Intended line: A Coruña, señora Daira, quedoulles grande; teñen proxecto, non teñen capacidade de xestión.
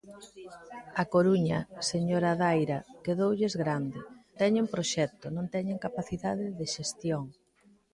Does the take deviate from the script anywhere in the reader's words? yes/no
no